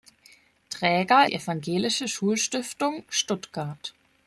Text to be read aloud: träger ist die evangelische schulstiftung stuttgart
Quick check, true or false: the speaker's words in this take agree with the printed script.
false